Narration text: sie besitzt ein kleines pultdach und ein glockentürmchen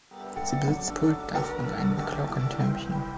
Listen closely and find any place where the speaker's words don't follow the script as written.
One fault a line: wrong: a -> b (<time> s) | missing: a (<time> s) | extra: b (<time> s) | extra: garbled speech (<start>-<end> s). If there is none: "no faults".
missing: ein kleines (0.9 s)